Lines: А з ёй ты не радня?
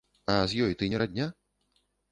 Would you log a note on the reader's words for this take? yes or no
no